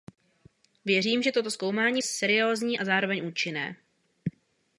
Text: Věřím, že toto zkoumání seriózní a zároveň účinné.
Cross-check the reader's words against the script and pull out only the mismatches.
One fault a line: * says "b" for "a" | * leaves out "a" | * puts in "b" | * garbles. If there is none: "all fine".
all fine